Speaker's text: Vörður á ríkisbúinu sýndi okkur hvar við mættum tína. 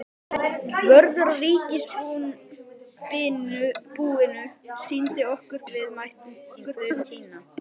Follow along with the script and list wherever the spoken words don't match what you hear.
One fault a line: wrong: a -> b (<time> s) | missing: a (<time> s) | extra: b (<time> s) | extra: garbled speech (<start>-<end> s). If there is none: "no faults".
missing: hvar (5.7 s)
extra: garbled speech (6.6-7.0 s)